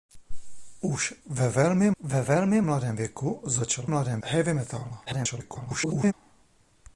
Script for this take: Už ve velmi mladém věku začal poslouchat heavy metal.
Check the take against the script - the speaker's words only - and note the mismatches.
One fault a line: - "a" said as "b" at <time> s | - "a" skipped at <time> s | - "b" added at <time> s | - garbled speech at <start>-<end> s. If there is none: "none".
- "ve velmi" added at 2.0 s
- "poslouchat" said as "mladém" at 3.8 s
- garbled speech at 5.1-6.1 s